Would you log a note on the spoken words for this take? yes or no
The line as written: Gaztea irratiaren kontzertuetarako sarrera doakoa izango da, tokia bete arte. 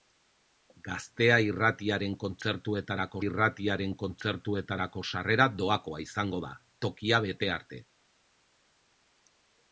yes